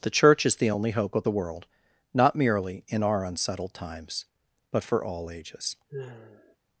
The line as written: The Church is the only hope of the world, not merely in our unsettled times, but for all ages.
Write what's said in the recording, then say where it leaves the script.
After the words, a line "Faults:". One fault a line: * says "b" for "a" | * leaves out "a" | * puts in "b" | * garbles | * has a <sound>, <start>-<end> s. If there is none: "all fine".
The Church is the only hope of the world, not merely in our unsettled times, but for all ages.
Faults:
* has a sigh, 5.9-6.6 s